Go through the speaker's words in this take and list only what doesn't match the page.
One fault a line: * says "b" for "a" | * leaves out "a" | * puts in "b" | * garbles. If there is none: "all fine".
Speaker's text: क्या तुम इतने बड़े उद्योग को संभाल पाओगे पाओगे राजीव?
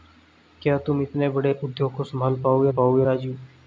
all fine